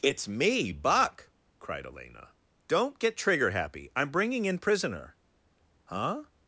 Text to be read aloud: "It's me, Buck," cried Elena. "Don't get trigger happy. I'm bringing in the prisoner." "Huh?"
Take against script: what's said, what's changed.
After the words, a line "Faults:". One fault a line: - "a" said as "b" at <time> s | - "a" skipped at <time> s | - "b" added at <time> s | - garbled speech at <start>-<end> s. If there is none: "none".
"It's me, Buck," cried Elena. "Don't get trigger happy. I'm bringing in prisoner." "Huh?"
Faults:
- "the" skipped at 4.6 s